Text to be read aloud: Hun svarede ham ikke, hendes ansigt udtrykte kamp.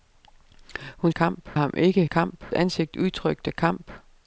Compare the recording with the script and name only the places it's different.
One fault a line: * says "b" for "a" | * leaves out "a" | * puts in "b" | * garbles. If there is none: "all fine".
* says "kamp" for "svarede"
* says "kamp" for "hendes"